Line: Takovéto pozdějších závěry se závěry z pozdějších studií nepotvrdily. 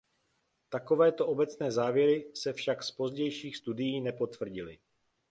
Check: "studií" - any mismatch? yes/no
no